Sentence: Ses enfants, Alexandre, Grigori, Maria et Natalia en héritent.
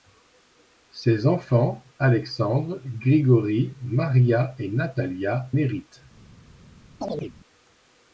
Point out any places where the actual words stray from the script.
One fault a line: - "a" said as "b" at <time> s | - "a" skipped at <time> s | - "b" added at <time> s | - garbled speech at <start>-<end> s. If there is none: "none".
- "en" skipped at 5.5 s